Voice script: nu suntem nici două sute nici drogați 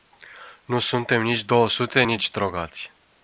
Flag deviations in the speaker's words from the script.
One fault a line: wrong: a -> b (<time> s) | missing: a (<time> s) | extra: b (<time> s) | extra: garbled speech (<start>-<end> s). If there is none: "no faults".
no faults